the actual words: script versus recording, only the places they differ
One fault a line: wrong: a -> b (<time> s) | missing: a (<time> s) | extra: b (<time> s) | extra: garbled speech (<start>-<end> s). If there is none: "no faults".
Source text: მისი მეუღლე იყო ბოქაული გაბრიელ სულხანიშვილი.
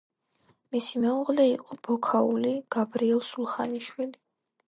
no faults